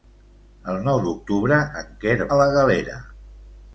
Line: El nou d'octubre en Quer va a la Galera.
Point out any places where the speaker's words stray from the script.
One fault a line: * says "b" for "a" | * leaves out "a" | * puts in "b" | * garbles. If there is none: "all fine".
* leaves out "va"